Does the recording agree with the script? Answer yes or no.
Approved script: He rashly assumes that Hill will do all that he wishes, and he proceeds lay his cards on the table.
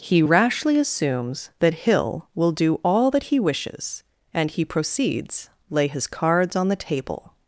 yes